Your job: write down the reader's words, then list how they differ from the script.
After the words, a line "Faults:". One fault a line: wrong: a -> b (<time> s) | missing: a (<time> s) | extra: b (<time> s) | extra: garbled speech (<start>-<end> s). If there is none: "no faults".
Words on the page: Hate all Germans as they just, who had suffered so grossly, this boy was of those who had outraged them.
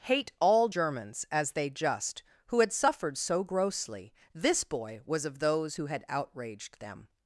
Hate all Germans as they just, who had suffered so grossly, this boy was of those who had outraged them.
Faults:
no faults